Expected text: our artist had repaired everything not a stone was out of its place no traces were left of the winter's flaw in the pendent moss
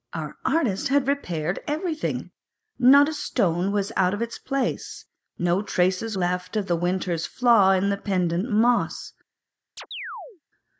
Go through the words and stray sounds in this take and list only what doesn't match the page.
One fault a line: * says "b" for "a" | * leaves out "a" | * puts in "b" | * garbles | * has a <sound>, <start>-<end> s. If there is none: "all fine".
* leaves out "were"
* has a chirp, 9.8-10.4 s